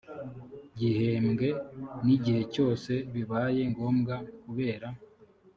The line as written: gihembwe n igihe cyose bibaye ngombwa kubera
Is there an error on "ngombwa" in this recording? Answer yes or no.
no